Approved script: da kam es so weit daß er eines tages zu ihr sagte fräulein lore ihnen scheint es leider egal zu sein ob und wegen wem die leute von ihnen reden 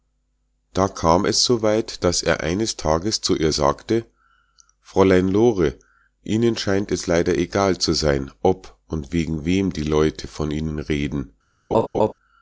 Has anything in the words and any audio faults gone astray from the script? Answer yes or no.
yes